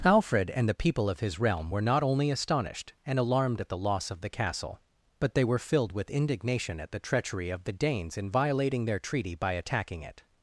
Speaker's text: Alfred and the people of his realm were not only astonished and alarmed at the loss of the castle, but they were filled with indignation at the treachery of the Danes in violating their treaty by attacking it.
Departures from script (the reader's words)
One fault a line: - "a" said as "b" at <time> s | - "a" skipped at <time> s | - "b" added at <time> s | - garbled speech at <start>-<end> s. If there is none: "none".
none